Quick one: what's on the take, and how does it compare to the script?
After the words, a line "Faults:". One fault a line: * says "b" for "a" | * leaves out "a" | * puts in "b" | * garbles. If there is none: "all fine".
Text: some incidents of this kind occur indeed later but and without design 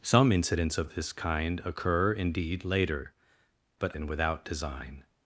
some incidents of this kind occur indeed later but and without design
Faults:
all fine